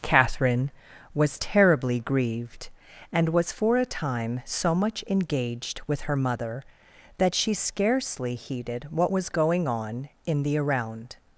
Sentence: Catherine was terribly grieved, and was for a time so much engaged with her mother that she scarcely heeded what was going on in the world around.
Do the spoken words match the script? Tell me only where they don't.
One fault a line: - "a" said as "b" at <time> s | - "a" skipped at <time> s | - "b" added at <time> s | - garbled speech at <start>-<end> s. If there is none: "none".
- "world" skipped at 10.6 s